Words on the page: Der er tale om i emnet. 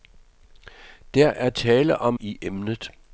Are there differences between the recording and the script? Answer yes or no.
no